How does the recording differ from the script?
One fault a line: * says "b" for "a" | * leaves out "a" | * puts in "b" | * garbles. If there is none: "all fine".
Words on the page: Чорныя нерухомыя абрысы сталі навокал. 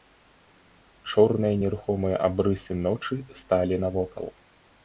* puts in "ночы"